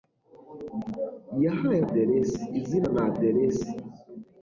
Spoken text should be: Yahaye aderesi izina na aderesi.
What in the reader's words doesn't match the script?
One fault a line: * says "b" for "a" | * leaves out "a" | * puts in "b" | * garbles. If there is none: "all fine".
all fine